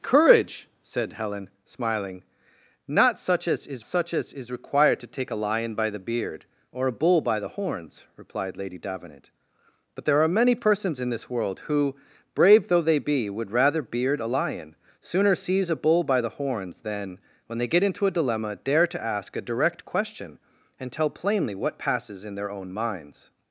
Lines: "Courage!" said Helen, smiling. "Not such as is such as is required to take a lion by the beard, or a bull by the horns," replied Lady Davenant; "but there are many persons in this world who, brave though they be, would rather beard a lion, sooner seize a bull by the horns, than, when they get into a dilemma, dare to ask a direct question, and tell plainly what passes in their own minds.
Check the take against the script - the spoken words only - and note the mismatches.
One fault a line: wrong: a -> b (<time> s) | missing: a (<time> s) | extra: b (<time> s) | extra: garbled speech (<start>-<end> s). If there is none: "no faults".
no faults